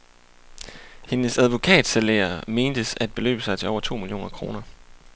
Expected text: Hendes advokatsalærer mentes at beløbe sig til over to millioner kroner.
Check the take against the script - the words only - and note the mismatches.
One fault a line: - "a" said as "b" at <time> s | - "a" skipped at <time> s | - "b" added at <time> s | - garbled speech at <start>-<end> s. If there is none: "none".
none